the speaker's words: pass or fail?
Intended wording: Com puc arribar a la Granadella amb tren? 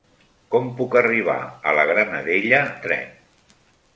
fail